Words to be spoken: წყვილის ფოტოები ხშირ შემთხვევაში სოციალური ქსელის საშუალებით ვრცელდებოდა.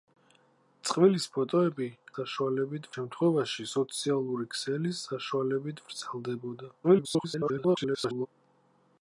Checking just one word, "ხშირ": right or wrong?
wrong